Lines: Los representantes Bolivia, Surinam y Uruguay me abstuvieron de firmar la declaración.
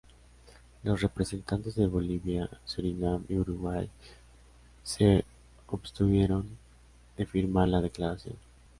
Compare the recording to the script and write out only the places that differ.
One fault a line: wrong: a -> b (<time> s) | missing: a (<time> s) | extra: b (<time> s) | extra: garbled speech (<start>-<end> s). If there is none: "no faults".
extra: de (1.8 s)
wrong: me -> se (4.8 s)